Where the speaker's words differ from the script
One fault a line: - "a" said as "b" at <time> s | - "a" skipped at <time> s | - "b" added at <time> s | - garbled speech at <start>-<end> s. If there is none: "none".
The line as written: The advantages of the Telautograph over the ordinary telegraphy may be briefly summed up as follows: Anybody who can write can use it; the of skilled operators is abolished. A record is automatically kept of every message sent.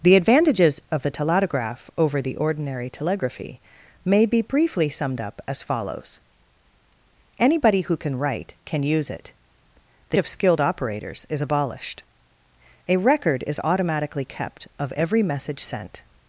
none